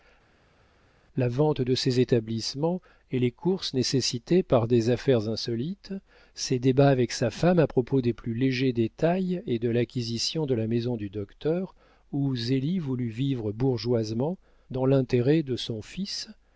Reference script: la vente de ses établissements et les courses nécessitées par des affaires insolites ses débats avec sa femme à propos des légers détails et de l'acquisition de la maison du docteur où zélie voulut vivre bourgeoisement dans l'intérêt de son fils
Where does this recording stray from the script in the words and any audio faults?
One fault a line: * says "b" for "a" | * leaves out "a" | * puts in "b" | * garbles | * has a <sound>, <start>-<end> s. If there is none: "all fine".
* puts in "plus"